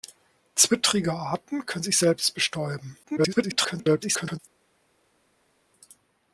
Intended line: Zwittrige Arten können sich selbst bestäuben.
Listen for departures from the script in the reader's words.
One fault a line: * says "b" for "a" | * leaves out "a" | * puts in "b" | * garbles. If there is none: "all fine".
* garbles